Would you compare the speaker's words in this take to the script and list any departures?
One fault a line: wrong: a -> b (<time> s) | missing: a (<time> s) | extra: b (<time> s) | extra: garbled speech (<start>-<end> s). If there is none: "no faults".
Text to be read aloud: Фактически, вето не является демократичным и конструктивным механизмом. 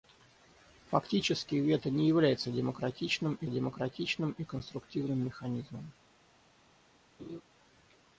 extra: демократичным и (3.5 s)